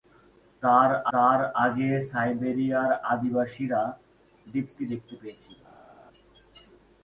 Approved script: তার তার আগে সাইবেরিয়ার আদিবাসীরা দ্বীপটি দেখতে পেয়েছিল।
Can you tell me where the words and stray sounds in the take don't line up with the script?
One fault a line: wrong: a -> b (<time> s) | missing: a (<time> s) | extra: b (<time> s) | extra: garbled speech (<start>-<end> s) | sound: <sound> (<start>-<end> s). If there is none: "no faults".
no faults